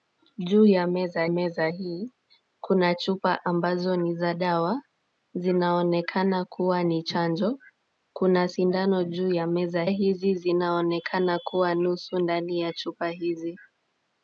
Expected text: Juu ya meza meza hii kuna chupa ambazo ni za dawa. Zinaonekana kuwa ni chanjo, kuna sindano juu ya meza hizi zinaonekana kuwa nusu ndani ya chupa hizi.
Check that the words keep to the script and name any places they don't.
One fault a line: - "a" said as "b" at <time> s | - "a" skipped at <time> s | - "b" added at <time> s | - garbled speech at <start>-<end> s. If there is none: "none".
none